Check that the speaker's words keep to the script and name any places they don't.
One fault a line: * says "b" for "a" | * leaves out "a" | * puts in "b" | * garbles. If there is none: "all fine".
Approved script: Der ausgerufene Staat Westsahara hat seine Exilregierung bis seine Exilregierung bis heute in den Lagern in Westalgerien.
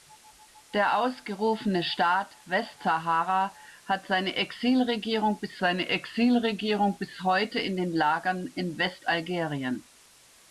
all fine